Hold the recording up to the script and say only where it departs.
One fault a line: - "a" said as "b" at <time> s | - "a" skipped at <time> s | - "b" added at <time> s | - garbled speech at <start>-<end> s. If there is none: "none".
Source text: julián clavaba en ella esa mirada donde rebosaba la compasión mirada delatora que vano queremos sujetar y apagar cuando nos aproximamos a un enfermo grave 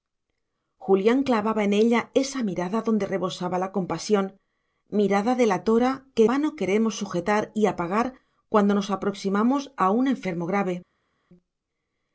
none